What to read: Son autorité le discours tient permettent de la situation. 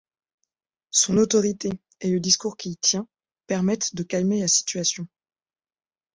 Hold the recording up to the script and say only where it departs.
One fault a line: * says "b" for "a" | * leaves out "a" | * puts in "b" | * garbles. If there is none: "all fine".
* puts in "et"
* puts in "qu'il"
* puts in "calmer"